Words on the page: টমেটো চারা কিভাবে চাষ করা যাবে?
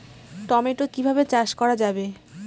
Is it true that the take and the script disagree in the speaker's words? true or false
true